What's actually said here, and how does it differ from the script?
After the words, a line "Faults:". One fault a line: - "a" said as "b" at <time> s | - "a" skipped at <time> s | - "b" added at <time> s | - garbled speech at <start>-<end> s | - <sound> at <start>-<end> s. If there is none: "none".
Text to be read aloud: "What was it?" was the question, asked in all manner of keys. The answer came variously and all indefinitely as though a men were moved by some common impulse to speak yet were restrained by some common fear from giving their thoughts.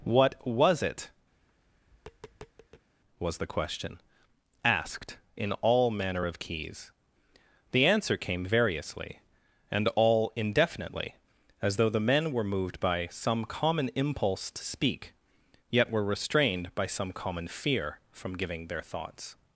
"What was it?" was the question, asked in all manner of keys. The answer came variously and all indefinitely as though the men were moved by some common impulse to speak yet were restrained by some common fear from giving their thoughts.
Faults:
- tap at 1.3-2.9 s
- "a" said as "the" at 11.9 s